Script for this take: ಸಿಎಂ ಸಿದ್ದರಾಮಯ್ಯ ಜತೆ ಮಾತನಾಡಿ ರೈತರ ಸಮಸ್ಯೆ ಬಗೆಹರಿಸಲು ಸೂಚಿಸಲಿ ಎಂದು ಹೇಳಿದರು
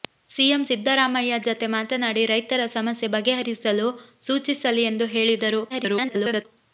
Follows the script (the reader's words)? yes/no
no